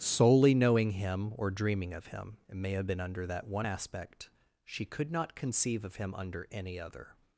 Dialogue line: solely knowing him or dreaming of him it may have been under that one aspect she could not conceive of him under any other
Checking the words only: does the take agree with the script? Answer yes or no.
yes